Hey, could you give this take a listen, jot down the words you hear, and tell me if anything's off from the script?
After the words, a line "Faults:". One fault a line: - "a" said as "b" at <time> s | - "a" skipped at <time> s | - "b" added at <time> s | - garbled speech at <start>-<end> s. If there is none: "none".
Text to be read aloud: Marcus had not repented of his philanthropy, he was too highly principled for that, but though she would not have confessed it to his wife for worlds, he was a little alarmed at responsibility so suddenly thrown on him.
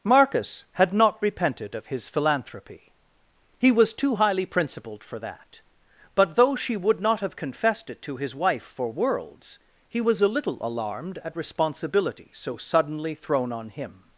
Marcus had not repented of his philanthropy, he was too highly principled for that, but though she would not have confessed it to his wife for worlds, he was a little alarmed at responsibility so suddenly thrown on him.
Faults:
none